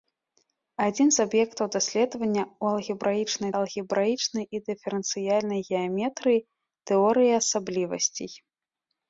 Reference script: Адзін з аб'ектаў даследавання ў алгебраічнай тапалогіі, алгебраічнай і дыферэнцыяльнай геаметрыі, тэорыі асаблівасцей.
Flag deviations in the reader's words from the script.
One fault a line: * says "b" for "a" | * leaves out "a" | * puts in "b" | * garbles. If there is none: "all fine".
* leaves out "тапалогіі"